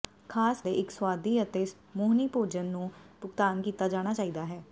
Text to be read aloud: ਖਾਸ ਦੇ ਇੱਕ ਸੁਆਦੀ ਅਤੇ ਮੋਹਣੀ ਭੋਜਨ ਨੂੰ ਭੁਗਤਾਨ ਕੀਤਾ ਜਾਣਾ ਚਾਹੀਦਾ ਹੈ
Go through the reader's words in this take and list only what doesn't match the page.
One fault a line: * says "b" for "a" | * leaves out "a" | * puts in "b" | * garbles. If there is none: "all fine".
all fine